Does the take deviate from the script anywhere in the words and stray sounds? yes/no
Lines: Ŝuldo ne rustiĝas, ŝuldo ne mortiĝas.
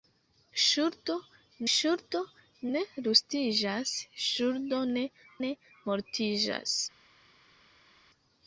yes